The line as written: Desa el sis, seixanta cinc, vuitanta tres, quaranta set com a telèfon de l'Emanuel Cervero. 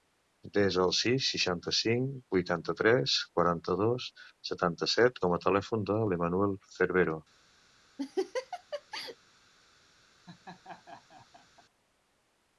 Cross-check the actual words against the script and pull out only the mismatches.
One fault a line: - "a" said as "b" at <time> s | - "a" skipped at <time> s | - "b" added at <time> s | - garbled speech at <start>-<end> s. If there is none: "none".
- "dos setanta" added at 3.8 s